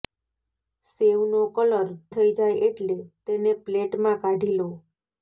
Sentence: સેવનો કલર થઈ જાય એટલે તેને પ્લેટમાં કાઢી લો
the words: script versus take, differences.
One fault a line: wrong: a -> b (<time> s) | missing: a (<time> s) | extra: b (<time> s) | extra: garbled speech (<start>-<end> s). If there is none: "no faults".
no faults